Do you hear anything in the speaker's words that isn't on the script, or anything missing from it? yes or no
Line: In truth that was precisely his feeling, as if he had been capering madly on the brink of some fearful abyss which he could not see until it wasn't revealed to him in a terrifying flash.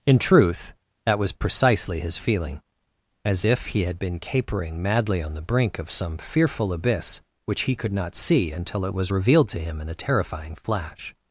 yes